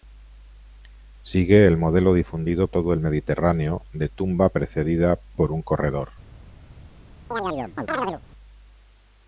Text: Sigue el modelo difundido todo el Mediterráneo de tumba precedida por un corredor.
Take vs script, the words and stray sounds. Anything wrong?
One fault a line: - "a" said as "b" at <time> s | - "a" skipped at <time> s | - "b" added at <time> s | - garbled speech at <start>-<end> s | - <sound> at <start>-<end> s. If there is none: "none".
- chirp at 7.3-8.2 s